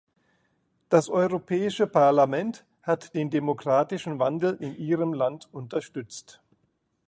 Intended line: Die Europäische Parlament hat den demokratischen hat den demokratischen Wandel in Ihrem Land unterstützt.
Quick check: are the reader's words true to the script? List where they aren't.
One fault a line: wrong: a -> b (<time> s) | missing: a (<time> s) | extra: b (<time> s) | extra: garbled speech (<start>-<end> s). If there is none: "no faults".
wrong: Die -> Das (0.9 s)
missing: hat den demokratischen (4.2 s)